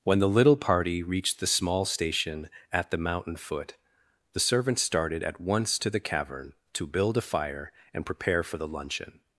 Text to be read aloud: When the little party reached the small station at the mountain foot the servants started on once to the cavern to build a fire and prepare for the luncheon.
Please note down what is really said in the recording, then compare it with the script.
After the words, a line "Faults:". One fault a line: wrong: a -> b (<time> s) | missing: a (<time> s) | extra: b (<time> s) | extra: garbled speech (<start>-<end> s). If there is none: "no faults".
When the little party reached the small station at the mountain foot the servants started at once to the cavern to build a fire and prepare for the luncheon.
Faults:
wrong: on -> at (5.2 s)